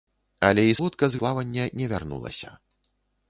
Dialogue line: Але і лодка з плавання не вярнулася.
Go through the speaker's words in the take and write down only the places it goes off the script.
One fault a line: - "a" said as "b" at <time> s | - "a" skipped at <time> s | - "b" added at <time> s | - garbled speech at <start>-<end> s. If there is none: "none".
none